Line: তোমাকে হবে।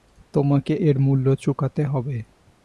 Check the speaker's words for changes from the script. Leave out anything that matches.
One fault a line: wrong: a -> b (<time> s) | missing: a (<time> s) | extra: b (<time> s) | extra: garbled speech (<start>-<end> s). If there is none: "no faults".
extra: এর মূল্য চুকাতে (0.8 s)